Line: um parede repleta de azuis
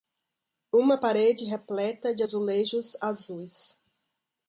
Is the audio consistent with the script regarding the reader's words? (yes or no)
no